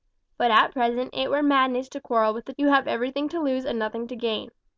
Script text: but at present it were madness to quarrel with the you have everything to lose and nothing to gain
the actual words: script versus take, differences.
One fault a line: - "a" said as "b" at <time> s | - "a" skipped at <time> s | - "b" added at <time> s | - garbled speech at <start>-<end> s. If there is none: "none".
none